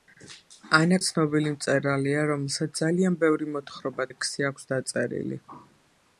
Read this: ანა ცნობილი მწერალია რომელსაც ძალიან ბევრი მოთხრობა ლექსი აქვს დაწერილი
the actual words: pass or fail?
pass